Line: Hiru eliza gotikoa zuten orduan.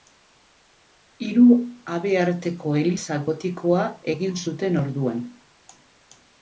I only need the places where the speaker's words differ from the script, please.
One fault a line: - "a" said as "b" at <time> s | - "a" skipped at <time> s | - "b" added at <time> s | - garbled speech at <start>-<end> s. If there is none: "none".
- "habearteko" added at 2.0 s
- "egin" added at 4.2 s